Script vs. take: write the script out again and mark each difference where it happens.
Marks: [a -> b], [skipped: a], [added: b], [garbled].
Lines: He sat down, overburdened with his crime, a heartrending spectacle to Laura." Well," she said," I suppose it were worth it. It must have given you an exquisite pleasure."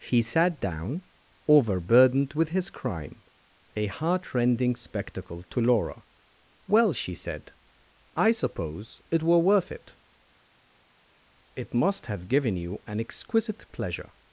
He sat down, overburdened with his crime, a heartrending spectacle to Laura." Well," she said," I suppose it were worth it. It must have given you an exquisite pleasure."